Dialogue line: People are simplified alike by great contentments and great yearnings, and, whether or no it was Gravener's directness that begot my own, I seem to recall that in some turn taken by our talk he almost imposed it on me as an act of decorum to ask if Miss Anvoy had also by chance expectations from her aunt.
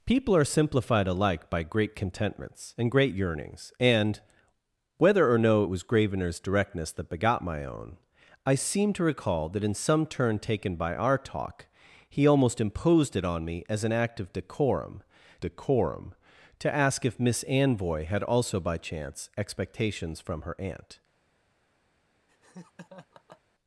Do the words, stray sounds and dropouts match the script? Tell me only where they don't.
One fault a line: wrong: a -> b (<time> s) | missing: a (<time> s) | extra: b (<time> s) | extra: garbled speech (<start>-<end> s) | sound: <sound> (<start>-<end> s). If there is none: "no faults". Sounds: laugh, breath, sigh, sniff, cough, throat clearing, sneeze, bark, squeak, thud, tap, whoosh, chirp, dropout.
extra: decorum (15.4 s)
sound: laugh (22.3-23.4 s)